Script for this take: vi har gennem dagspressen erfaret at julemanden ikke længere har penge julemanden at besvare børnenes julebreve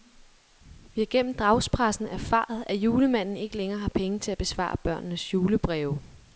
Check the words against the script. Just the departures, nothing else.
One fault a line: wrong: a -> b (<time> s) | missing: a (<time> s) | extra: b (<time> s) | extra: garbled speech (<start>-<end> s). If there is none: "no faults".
wrong: julemanden -> til (4.2 s)